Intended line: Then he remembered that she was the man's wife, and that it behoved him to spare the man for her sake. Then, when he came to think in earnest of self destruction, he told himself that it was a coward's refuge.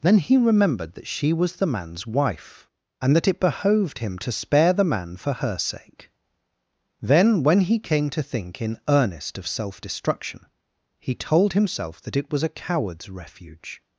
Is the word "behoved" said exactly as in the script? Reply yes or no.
yes